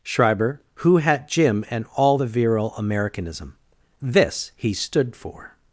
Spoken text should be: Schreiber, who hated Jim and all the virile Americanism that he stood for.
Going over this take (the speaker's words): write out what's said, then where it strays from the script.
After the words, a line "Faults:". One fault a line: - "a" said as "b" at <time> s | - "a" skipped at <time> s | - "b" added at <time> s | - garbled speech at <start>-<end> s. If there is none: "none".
Schreiber, who hat Jim and all the virile Americanism this he stood for.
Faults:
- "hated" said as "hat" at 1.0 s
- "that" said as "this" at 4.0 s